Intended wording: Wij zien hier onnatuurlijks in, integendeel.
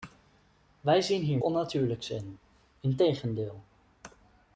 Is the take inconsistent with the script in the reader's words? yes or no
no